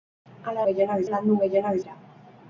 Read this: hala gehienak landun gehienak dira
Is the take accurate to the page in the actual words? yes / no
yes